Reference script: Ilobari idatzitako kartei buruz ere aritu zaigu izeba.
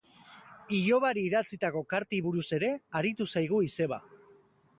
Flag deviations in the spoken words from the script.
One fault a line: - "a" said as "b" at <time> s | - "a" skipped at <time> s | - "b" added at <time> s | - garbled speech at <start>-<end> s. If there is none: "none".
none